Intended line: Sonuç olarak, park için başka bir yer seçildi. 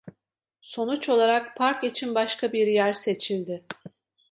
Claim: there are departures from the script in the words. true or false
false